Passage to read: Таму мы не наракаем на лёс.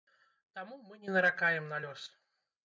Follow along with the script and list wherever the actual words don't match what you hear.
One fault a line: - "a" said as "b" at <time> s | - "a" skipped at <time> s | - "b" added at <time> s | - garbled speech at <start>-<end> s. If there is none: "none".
none